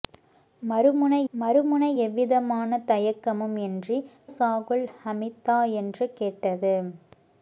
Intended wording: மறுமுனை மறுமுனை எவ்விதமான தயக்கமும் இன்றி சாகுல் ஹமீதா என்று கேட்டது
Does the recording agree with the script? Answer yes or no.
yes